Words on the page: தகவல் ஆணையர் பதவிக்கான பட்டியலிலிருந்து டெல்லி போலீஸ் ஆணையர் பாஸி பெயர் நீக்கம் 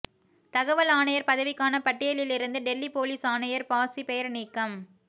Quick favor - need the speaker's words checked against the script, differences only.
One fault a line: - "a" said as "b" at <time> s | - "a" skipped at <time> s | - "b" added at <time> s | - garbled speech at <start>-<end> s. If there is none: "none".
none